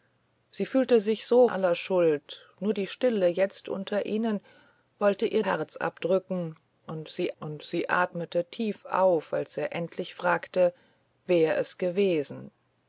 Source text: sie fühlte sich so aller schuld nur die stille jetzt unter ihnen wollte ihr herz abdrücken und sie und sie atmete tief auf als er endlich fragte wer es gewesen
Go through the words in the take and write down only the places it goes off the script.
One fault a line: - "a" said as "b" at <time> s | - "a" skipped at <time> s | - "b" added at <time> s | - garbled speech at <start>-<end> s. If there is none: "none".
none